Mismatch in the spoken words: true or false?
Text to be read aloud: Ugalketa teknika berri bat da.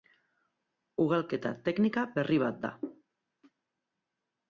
false